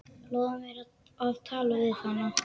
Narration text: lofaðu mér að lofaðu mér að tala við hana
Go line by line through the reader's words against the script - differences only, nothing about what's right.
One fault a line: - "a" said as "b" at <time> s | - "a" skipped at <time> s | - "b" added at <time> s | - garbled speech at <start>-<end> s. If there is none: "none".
- "lofaðu mér að" skipped at 1.4 s